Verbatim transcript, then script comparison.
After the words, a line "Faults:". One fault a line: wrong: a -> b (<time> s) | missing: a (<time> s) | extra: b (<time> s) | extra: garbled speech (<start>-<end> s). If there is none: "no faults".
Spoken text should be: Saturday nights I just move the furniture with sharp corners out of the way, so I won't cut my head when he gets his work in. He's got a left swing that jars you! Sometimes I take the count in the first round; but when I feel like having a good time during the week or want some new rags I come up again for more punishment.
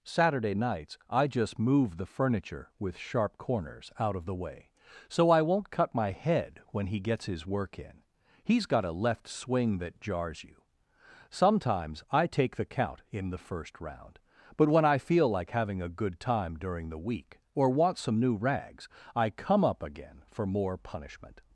Saturday nights I just move the furniture with sharp corners out of the way, so I won't cut my head when he gets his work in. He's got a left swing that jars you! Sometimes I take the count in the first round; but when I feel like having a good time during the week or want some new rags I come up again for more punishment.
Faults:
no faults